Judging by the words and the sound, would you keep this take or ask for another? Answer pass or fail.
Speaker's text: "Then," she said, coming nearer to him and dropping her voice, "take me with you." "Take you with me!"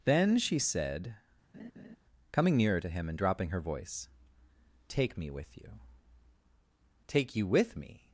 fail